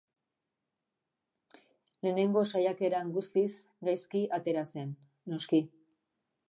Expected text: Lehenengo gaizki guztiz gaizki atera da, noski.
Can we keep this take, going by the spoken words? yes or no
no